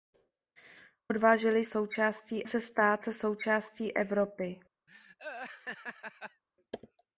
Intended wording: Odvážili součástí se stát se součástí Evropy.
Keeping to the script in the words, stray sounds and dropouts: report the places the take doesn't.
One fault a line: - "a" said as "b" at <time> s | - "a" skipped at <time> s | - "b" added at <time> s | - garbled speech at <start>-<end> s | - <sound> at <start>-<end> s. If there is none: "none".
- laugh at 4.9-6.4 s